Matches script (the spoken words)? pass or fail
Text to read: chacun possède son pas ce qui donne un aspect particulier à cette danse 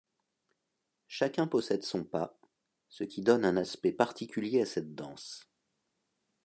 pass